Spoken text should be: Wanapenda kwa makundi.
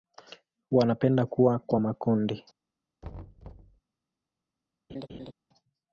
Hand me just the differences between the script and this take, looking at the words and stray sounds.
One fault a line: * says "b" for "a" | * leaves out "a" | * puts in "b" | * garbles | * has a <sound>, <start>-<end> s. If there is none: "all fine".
* puts in "kuwa"
* has a thud, 3.0-3.8 s
* has a laugh, 4.9-5.3 s